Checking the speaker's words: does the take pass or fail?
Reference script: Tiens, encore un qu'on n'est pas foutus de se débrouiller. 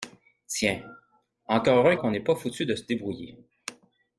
pass